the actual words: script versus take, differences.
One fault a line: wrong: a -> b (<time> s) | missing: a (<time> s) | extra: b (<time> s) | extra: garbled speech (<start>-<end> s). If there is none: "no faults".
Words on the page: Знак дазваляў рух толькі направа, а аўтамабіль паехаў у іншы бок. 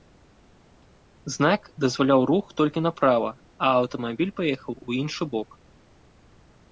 no faults